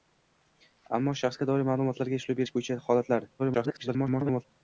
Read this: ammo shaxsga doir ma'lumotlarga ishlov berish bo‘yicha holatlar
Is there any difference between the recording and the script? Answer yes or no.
yes